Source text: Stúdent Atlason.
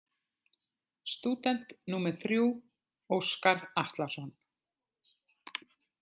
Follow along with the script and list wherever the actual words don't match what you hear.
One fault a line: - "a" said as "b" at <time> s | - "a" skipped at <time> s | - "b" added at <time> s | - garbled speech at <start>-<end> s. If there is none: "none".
- "númer þrjú Óskar" added at 1.9 s